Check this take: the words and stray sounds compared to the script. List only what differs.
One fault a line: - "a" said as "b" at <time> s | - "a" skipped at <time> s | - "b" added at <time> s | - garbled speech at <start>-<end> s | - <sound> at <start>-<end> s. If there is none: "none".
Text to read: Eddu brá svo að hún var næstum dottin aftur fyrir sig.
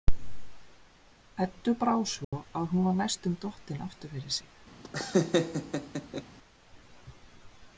- dropout at 2.2-2.3 s
- laugh at 4.8-6.2 s